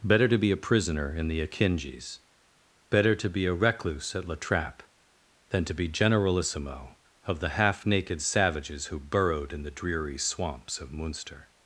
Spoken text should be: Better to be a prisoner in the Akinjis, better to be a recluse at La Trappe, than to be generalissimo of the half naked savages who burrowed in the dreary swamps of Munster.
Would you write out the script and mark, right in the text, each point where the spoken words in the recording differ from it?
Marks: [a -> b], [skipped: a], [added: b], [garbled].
Better to be a prisoner in the Akinjis, better to be a recluse at La Trappe, than to be generalissimo of the half naked savages who burrowed in the dreary swamps of Munster.